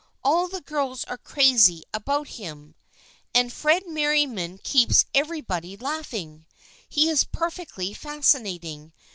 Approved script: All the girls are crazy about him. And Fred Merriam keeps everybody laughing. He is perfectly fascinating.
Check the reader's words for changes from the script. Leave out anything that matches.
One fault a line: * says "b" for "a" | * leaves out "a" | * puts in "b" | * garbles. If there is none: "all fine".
all fine